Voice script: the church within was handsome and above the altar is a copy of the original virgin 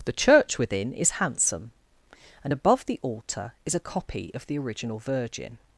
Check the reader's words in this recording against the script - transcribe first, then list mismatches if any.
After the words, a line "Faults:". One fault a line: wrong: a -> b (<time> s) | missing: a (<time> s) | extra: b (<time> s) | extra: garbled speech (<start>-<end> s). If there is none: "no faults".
the church within is handsome and above the altar is a copy of the original virgin
Faults:
wrong: was -> is (0.9 s)